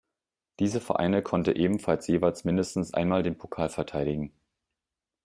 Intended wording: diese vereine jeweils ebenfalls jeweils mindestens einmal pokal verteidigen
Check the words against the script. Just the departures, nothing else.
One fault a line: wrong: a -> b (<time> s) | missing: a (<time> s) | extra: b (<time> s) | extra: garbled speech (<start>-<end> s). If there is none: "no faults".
wrong: jeweils -> konnte (1.2 s)
extra: den (3.2 s)